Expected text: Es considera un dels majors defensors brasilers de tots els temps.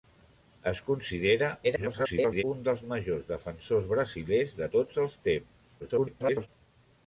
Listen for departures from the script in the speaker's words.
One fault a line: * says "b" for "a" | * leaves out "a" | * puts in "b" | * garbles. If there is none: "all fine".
* garbles
* garbles